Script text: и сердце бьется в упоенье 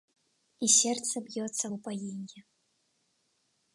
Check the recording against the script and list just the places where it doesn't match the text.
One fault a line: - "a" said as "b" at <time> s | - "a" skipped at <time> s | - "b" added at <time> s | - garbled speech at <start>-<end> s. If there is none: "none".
none